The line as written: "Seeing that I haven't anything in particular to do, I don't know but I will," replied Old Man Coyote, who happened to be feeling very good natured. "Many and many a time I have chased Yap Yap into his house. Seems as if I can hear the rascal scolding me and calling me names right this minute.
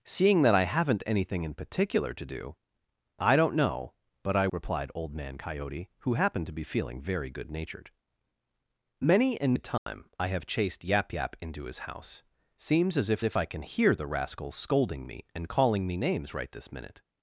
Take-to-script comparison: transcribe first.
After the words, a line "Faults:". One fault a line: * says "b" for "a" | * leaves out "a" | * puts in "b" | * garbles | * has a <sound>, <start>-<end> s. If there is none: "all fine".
"Seeing that I haven't anything in particular to do, I don't know but I," replied Old Man Coyote, who happened to be feeling very good natured. "Many and a time I have chased Yap Yap into his house. Seems as if if I can hear the rascal scolding me and calling me names right this minute.
Faults:
* leaves out "will"
* leaves out "many"
* has a dropout, 9.8-9.9 s
* puts in "if"